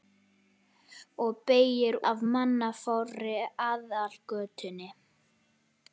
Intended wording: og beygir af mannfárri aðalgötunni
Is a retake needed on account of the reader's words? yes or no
no